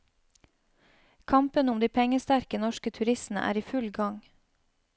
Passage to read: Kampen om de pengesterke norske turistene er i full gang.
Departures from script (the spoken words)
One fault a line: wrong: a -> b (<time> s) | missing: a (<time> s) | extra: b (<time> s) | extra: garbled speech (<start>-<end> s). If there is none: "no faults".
no faults